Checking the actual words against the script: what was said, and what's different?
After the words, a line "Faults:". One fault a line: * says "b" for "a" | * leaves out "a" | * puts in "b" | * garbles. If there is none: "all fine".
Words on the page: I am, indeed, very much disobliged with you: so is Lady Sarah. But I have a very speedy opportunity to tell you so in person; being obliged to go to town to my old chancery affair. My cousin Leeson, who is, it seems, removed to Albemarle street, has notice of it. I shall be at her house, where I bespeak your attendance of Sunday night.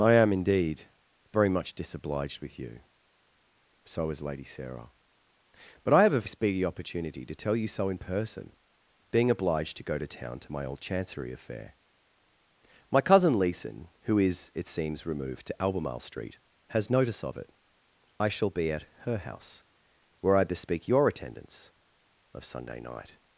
I am, indeed, very much disobliged with you: so is Lady Sarah. But I have a speedy opportunity to tell you so in person; being obliged to go to town to my old chancery affair. My cousin Leeson, who is, it seems, removed to Albemarle street, has notice of it. I shall be at her house, where I bespeak your attendance of Sunday night.
Faults:
* leaves out "very"